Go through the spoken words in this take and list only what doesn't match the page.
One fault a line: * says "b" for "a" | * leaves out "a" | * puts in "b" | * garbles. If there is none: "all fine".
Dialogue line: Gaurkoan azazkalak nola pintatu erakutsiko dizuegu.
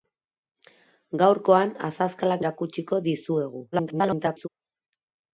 * leaves out "nola pintatu"
* garbles